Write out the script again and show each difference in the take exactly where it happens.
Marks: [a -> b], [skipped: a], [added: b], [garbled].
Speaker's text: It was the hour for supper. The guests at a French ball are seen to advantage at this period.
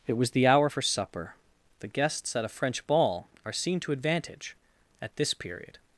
It was the hour for supper. The guests at a French ball are seen to advantage at this period.